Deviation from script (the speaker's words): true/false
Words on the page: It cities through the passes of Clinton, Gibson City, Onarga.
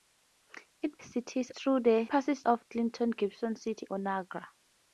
false